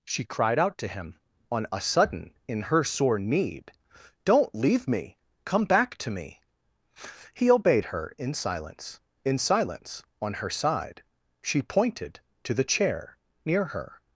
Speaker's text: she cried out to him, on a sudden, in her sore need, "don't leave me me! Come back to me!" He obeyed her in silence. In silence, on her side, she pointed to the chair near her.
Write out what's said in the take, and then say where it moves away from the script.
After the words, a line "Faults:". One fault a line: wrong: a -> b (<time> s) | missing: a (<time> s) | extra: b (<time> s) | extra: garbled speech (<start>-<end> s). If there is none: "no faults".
she cried out to him, on a sudden, in her sore need, "don't leave me! Come back to me!" He obeyed her in silence. In silence, on her side, she pointed to the chair near her.
Faults:
missing: me (5.2 s)